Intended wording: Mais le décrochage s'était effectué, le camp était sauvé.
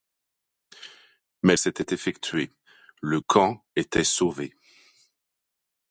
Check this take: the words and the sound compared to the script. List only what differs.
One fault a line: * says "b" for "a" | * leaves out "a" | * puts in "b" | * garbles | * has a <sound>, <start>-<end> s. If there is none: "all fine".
* leaves out "le décrochage"